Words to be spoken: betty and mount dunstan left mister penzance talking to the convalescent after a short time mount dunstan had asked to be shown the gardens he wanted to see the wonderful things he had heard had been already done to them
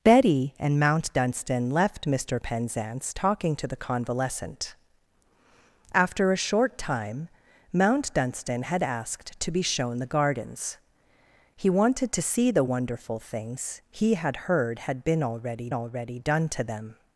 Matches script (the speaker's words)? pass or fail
fail